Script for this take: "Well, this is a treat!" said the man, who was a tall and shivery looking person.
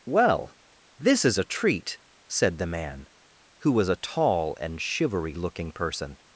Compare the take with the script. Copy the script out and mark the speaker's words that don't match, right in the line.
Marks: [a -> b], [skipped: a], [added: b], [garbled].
"Well, this is a treat!" said the man, who was a tall and shivery looking person.